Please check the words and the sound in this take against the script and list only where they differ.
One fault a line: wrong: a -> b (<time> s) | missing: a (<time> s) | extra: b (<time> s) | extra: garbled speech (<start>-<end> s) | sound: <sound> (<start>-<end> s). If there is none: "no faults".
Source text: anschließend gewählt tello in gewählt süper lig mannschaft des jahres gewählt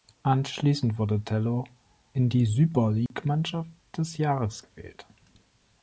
wrong: gewählt -> wurde (1.0 s)
wrong: gewählt -> die (2.3 s)
sound: dropout (3.1-3.1 s)